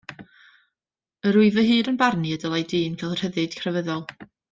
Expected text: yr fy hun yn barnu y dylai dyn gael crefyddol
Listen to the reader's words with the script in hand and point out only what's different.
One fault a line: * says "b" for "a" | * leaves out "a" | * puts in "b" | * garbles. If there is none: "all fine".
* puts in "wyf"
* puts in "rhyddid"